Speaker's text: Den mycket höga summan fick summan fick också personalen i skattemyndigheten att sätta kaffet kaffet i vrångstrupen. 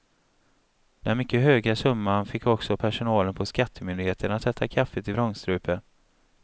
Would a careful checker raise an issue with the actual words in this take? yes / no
yes